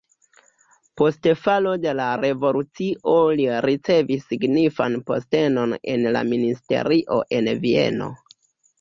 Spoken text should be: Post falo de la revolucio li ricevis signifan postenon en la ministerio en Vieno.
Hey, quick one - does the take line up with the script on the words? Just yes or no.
yes